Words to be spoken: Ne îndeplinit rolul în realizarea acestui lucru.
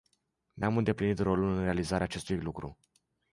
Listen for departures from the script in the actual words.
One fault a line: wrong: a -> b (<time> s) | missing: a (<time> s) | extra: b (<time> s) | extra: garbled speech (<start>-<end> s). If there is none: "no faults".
extra: am (0.6 s)